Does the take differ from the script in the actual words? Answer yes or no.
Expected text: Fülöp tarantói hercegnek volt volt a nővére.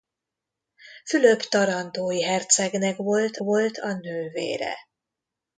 no